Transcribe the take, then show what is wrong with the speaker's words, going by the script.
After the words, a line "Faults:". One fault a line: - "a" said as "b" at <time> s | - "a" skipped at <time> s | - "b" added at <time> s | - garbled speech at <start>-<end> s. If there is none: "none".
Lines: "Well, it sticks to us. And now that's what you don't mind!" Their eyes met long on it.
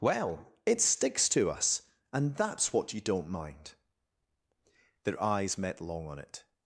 "Well, it sticks to us. And that's what you don't mind!" Their eyes met long on it.
Faults:
- "now" skipped at 2.4 s